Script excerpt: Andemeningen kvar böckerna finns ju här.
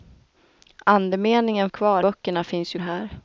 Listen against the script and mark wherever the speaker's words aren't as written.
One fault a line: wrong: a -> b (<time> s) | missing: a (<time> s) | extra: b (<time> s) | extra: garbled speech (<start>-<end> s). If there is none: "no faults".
no faults